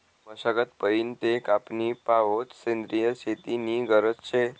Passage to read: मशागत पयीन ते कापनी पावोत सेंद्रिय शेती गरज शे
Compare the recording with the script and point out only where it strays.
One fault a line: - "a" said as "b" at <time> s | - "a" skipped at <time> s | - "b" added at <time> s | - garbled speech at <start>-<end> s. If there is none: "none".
- "नी" added at 3.6 s